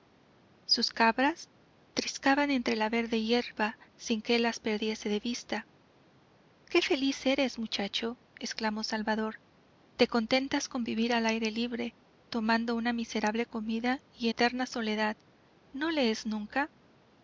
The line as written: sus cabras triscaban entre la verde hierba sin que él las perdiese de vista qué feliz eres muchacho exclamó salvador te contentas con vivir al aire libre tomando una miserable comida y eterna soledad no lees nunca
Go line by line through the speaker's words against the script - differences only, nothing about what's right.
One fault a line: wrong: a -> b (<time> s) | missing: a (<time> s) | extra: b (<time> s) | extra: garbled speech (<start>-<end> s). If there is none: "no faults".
no faults